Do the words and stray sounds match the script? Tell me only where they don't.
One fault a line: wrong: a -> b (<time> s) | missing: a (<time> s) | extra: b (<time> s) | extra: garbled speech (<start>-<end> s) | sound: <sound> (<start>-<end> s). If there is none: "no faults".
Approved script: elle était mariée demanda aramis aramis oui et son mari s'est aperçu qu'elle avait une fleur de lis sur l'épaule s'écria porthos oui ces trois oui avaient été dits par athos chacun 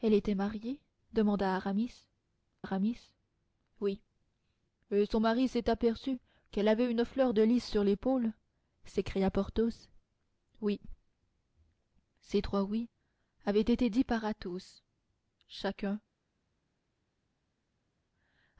no faults